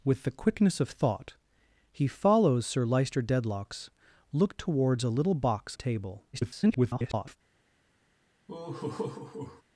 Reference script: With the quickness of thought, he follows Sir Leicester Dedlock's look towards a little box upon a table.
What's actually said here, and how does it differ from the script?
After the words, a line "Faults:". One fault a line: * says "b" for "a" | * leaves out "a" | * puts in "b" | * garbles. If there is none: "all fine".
With the quickness of thought, he follows Sir Leicester Dedlock's look towards a little box a table. [garbled]
Faults:
* leaves out "upon"
* garbles